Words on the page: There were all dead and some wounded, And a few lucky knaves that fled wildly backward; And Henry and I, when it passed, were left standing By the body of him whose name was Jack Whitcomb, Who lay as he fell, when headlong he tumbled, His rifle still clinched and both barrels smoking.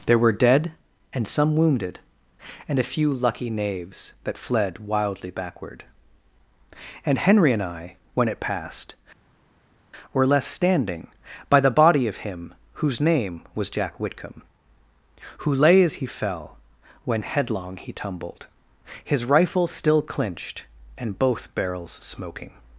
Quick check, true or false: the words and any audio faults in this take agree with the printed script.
false